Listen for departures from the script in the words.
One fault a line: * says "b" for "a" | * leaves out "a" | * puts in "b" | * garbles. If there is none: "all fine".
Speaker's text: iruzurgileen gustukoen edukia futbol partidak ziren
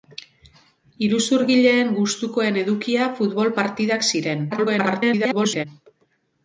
* garbles